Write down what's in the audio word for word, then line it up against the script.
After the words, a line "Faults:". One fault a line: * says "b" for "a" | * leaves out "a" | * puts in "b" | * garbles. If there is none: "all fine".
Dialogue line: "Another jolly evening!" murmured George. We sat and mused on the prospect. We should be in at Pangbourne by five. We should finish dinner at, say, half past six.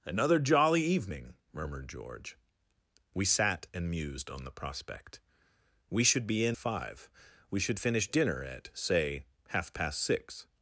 "Another jolly evening!" murmured George. We sat and mused on the prospect. We should be in five. We should finish dinner at, say, half past six.
Faults:
* leaves out "at Pangbourne by"